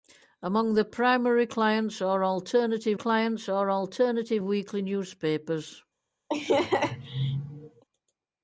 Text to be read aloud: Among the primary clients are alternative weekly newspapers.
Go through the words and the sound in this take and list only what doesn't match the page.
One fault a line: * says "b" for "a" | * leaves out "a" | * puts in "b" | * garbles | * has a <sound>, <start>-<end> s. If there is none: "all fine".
* puts in "clients are alternative"
* has a laugh, 6.3-7.8 s